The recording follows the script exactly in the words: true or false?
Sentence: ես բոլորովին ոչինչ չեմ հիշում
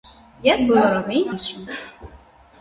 false